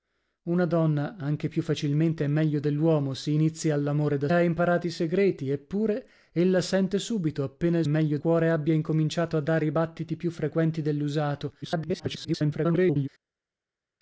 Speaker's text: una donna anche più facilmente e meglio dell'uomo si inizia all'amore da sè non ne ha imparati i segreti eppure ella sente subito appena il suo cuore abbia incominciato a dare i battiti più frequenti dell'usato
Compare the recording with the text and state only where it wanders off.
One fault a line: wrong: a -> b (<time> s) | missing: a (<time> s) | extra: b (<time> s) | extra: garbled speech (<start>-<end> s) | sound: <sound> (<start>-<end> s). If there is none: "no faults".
missing: sè non ne (4.3 s)
wrong: suo -> meglio (7.8 s)
extra: garbled speech (11.6-13.1 s)